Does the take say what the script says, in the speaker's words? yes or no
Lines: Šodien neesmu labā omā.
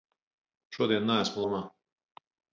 no